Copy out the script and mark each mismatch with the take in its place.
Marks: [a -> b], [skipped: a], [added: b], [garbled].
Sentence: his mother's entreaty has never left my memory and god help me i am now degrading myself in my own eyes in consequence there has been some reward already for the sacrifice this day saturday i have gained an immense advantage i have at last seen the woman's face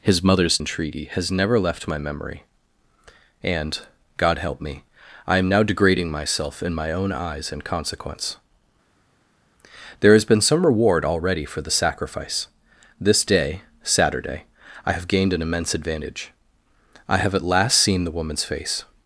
his mother's entreaty has never left my memory and god help me i am now degrading myself in my own eyes in consequence there has been some reward already for the sacrifice this day saturday i have gained an immense advantage i have at last seen the woman's face